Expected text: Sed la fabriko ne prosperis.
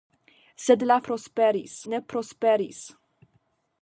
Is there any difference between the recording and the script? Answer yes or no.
yes